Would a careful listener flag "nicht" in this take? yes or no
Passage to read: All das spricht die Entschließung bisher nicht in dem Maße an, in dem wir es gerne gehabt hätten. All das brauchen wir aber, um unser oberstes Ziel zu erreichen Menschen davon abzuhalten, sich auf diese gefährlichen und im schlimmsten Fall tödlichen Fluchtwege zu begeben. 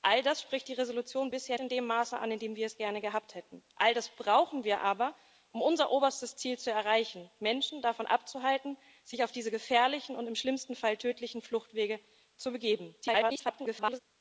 yes